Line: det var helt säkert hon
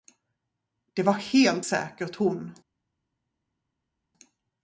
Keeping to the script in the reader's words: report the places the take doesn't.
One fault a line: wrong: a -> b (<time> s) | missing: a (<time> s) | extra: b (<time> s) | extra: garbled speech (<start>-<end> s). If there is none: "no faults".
no faults